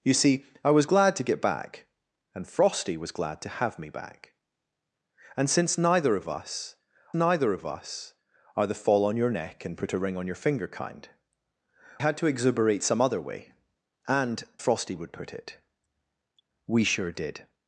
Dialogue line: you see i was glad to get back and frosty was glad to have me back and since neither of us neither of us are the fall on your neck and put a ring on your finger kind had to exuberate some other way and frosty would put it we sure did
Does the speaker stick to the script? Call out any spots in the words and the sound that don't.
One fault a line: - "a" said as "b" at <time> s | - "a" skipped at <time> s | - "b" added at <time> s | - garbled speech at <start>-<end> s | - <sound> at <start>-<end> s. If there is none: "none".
none